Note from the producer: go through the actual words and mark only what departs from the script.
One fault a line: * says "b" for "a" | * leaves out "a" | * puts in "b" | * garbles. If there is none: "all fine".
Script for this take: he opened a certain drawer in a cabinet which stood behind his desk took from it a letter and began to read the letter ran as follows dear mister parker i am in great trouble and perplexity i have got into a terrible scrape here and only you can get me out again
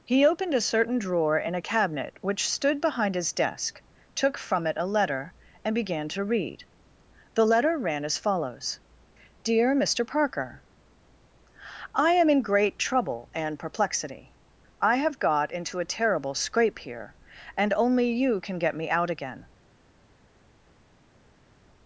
all fine